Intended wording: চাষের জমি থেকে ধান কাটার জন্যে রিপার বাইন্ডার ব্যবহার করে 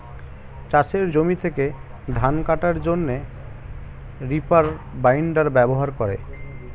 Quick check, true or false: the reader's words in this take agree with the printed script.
true